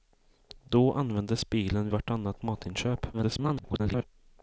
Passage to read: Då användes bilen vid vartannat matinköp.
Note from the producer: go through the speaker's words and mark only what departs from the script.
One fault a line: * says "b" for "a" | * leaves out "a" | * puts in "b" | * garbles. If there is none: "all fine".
* leaves out "vid"
* garbles